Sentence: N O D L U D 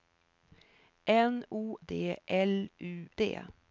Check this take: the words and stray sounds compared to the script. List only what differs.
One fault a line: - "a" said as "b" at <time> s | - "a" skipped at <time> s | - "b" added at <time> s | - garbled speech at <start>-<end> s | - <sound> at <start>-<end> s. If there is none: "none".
none